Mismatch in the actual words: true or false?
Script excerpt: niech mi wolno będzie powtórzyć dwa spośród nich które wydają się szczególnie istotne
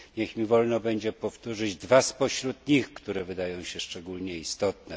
false